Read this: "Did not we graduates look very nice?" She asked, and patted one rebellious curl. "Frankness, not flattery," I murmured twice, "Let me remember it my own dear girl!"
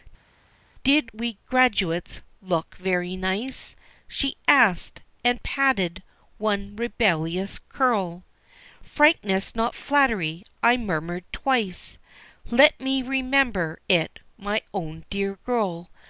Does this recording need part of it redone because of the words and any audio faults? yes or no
yes